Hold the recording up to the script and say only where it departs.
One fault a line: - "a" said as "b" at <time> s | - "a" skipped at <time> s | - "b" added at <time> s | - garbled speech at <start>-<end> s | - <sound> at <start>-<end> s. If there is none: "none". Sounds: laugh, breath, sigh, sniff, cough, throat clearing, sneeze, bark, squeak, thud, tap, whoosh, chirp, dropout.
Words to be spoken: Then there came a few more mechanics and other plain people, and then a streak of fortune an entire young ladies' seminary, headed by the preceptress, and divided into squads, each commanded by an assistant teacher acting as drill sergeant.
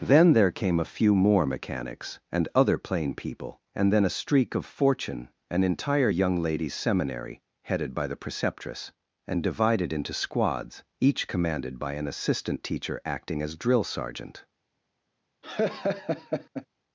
- laugh at 15.4-16.7 s